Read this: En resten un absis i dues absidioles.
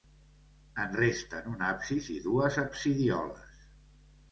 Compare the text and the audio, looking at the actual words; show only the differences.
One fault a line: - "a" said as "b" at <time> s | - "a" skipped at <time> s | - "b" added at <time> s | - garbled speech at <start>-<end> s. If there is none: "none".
none